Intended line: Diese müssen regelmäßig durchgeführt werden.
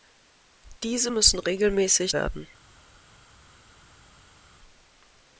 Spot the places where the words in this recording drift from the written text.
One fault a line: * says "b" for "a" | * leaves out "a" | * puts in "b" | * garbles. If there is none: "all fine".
* leaves out "durchgeführt"